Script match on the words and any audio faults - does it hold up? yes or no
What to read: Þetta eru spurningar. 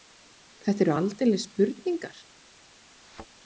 no